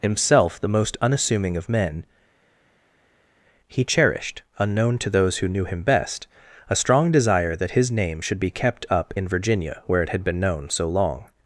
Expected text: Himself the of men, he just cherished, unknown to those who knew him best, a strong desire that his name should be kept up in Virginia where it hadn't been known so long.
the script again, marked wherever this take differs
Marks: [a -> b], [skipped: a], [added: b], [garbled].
Himself the [added: most unassuming] of men, he [skipped: just] cherished, unknown to those who knew him best, a strong desire that his name should be kept up in Virginia where it [hadn't -> had] been known so long.